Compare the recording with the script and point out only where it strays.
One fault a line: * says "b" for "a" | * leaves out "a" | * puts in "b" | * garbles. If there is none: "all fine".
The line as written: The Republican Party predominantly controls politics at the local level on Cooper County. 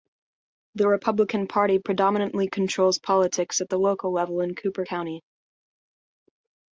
* says "in" for "on"